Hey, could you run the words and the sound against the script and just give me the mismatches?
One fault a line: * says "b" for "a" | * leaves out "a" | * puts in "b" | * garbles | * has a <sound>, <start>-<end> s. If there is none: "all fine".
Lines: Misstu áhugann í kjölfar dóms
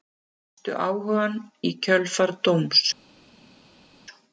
all fine